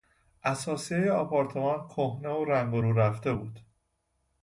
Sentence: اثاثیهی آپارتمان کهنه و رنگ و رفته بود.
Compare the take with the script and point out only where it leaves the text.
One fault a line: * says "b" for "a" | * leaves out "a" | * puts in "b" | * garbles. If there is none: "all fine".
* puts in "رو"